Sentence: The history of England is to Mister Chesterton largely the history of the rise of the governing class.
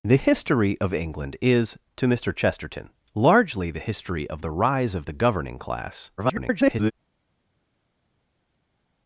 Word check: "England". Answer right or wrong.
right